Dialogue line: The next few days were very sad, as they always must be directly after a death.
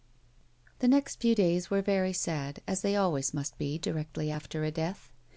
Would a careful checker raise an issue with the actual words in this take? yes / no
no